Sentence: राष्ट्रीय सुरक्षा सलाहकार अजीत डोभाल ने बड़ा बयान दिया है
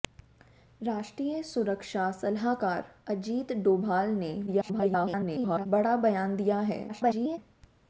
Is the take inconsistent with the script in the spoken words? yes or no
yes